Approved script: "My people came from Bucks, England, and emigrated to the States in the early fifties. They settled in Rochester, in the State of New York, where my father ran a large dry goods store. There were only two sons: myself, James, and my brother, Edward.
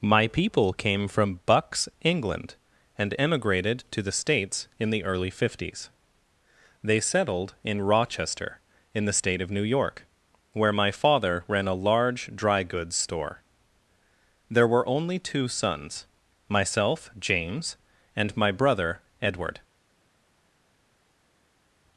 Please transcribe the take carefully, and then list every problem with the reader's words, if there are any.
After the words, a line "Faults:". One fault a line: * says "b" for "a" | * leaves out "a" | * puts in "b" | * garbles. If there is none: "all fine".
"My people came from Bucks, England, and emigrated to the States in the early fifties. They settled in Rochester, in the State of New York, where my father ran a large dry goods store. There were only two sons: myself, James, and my brother, Edward.
Faults:
all fine